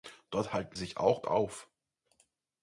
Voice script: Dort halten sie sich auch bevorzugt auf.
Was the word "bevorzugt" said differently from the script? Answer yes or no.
yes